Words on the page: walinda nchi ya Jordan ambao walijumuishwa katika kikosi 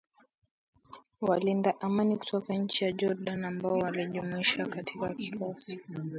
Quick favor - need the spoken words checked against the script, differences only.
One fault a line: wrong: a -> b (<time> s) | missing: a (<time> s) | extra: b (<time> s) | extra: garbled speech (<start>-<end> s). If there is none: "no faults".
extra: amani kutoka (1.8 s)